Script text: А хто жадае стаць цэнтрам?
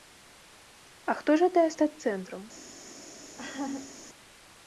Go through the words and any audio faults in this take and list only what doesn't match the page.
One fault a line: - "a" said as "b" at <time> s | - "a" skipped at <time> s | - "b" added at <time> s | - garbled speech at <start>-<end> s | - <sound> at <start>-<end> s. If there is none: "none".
- laugh at 3.4-4.0 s